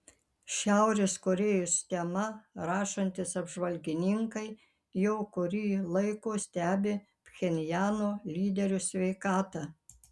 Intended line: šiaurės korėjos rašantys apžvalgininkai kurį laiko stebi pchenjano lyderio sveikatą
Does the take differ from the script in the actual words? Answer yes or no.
yes